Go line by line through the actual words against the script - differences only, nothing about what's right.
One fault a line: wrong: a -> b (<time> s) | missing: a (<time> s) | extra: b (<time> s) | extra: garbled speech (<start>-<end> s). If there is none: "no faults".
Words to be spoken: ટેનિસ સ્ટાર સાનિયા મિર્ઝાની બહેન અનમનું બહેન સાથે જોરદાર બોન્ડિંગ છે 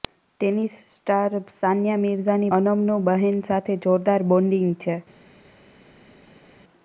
missing: બહેન (2.5 s)